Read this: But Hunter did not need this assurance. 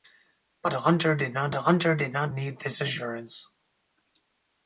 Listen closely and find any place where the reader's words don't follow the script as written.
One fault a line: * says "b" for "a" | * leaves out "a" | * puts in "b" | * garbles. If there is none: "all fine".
* puts in "Hunter did not"